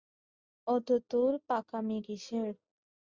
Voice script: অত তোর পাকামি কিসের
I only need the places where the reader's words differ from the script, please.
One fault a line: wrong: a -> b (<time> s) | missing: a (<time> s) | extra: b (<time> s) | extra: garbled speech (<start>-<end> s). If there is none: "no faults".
no faults